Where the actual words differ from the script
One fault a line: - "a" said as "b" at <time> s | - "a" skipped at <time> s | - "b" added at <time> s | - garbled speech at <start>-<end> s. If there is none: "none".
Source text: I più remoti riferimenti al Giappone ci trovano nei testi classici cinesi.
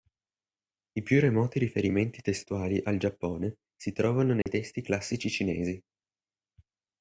- "testuali" added at 2.2 s
- "ci" said as "si" at 3.7 s